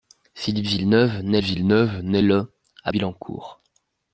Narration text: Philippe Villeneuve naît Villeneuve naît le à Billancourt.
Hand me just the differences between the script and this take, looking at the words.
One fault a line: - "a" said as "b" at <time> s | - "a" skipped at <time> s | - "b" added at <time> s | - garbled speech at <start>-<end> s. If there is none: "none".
none